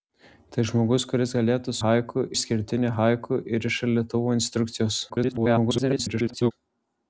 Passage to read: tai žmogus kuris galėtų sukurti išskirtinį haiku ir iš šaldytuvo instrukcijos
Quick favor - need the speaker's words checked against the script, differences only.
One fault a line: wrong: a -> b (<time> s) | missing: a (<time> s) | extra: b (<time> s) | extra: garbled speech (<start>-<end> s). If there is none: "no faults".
wrong: sukurti -> haiku (1.8 s)
extra: garbled speech (5.1-6.5 s)